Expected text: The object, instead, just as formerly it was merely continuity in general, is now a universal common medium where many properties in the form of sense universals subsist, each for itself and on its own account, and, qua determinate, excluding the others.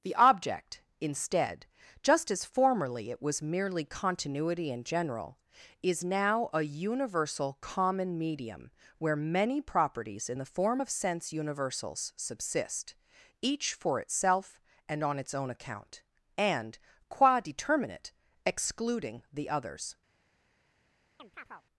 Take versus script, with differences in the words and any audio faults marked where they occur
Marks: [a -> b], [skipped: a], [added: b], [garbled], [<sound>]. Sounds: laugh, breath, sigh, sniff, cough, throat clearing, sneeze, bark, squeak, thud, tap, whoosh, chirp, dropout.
The object, instead, just as formerly it was merely continuity in general, is now a universal common medium where many properties in the form of sense universals subsist, each for itself and on its own account, and, qua determinate, excluding the others. [chirp]